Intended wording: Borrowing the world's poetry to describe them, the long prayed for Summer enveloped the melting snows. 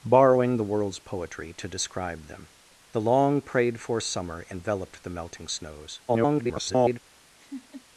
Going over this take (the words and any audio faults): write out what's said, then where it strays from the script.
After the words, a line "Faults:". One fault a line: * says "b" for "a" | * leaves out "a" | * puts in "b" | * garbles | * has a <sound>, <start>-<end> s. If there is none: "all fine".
Borrowing the world's poetry to describe them, the long prayed for Summer enveloped the melting snows. [garbled]
Faults:
* garbles
* has a laugh, 7.4-7.9 s